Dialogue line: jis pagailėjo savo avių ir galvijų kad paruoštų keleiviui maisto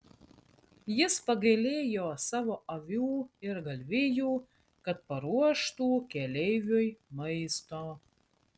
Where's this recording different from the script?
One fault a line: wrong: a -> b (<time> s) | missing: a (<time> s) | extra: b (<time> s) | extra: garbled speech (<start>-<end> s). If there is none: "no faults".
no faults